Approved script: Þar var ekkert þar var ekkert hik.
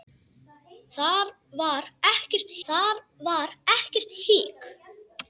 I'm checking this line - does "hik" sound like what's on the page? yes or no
yes